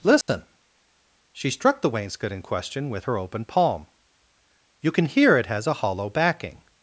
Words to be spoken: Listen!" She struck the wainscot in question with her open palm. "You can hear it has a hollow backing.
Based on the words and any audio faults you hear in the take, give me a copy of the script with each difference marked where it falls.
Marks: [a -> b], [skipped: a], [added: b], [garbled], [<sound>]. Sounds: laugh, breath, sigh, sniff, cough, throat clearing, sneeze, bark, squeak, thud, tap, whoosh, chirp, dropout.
Listen!" [dropout] She struck the wainscot in question with her open palm. "You can hear it has a hollow backing.